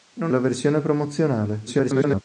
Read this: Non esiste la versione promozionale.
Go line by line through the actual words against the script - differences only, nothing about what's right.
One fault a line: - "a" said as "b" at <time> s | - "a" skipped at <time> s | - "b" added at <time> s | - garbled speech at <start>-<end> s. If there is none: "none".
- "esiste" skipped at 0.3 s
- garbled speech at 1.7-2.2 s